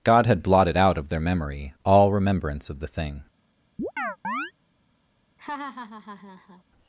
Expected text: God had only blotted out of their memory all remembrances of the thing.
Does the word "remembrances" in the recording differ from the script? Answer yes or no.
yes